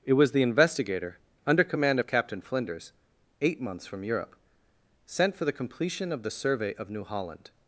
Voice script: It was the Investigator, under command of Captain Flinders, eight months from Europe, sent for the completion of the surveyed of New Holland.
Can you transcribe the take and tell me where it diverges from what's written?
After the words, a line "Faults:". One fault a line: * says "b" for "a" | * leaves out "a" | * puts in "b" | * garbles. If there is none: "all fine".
It was the Investigator, under command of Captain Flinders, eight months from Europe, sent for the completion of the survey of New Holland.
Faults:
* says "survey" for "surveyed"